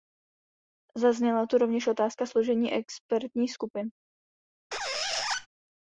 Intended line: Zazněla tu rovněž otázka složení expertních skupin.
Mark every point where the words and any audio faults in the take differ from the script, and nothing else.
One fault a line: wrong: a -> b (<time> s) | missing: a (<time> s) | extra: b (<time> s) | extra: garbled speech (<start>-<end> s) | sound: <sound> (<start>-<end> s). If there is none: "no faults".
sound: squeak (4.7-5.5 s)